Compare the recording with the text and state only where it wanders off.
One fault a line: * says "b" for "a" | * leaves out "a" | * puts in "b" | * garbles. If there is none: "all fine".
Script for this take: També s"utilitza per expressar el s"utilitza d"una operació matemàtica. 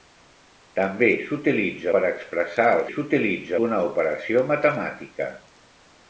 all fine